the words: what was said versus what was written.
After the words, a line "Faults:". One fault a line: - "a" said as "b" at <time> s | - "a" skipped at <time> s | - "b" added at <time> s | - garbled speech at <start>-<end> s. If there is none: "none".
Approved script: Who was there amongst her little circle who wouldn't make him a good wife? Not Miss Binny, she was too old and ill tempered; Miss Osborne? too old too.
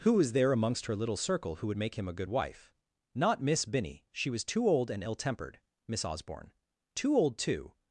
Who was there amongst her little circle who would make him a good wife? Not Miss Binny, she was too old and ill tempered; Miss Osborne? too old too.
Faults:
- "wouldn't" said as "would" at 1.7 s